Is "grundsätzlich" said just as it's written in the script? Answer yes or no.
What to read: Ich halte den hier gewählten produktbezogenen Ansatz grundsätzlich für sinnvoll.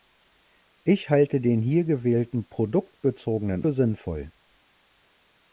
no